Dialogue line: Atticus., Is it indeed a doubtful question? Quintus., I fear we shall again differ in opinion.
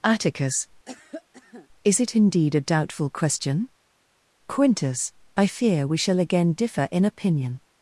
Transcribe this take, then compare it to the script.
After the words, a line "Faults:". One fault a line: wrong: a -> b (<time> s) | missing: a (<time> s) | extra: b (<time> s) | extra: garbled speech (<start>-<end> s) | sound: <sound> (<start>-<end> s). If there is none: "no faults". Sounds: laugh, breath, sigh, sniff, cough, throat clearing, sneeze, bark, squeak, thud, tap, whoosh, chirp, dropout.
Atticus., Is it indeed a doubtful question? Quintus., I fear we shall again differ in opinion.
Faults:
sound: cough (0.9-1.7 s)